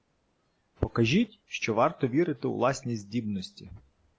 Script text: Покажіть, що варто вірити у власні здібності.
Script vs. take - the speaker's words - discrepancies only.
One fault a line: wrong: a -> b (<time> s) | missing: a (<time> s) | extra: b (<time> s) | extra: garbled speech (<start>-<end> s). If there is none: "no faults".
no faults